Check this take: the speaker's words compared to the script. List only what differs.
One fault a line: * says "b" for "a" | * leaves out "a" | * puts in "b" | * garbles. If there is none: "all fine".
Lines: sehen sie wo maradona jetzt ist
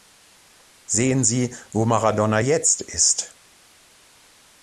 all fine